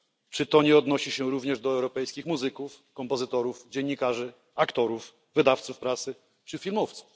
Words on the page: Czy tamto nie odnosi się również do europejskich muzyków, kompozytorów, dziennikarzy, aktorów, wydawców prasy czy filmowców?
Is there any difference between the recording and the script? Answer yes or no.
yes